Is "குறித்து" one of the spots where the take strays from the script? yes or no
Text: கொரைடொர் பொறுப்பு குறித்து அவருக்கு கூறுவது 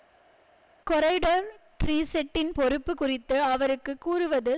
no